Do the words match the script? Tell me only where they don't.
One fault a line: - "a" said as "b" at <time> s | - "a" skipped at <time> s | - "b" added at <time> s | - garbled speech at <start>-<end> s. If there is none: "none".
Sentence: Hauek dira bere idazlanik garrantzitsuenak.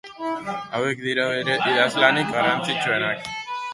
none